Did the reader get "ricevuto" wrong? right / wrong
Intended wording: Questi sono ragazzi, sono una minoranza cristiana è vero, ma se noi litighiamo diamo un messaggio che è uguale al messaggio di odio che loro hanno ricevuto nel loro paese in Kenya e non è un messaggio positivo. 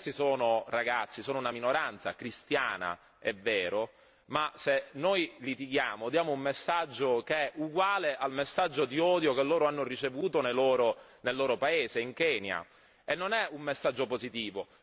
right